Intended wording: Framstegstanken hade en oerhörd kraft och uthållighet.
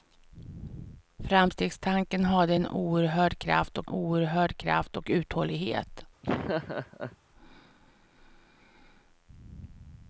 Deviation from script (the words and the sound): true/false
true